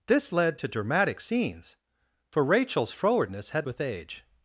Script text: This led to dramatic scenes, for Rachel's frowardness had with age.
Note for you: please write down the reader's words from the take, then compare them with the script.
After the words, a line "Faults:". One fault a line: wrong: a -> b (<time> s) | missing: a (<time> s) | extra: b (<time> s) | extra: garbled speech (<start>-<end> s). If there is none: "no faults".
This led to dramatic scenes, for Rachel's frowardness had with age.
Faults:
no faults